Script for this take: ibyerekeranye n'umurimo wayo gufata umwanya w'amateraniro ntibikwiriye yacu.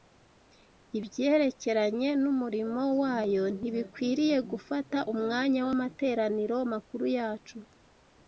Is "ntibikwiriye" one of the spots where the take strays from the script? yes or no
yes